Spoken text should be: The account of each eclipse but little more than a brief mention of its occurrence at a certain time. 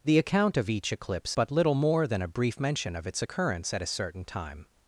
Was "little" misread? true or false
false